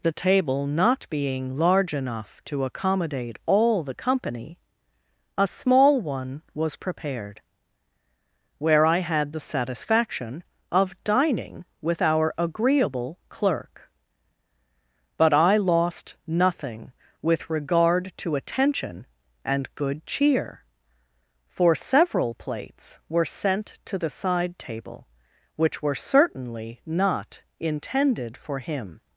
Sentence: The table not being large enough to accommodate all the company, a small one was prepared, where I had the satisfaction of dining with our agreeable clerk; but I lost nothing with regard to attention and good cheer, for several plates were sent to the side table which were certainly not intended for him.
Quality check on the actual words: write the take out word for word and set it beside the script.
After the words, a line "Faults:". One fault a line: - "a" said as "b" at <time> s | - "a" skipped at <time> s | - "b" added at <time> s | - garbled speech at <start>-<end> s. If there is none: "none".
The table not being large enough to accommodate all the company, a small one was prepared, where I had the satisfaction of dining with our agreeable clerk; but I lost nothing with regard to attention and good cheer, for several plates were sent to the side table which were certainly not intended for him.
Faults:
none